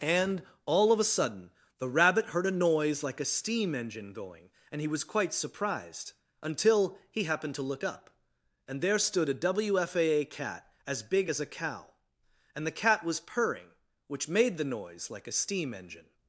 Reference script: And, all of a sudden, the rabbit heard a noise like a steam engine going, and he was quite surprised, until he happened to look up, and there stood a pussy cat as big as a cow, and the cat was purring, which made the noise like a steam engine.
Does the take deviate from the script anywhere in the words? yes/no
yes